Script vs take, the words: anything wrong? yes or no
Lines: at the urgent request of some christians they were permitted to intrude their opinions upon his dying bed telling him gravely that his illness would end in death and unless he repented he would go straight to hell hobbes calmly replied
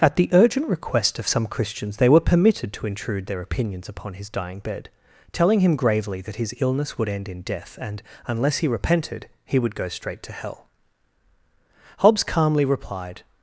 no